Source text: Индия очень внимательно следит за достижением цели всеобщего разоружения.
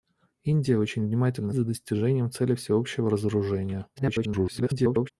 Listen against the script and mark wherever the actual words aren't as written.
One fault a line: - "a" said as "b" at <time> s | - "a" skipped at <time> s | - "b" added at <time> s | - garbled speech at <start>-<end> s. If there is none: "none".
- "следит" skipped at 1.5 s
- garbled speech at 4.0-5.1 s